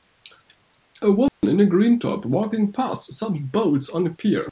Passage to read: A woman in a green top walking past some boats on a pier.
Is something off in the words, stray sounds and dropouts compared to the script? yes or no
yes